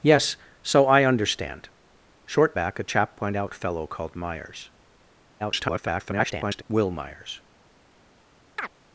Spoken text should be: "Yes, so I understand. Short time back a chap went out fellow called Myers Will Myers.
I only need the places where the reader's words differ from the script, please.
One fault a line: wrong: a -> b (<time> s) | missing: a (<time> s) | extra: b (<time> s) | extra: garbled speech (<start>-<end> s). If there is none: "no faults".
missing: time (2.5 s)
extra: garbled speech (5.4-6.6 s)